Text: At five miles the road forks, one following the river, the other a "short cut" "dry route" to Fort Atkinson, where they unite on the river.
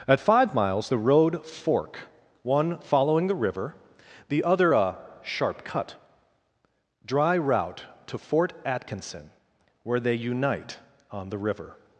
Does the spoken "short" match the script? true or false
false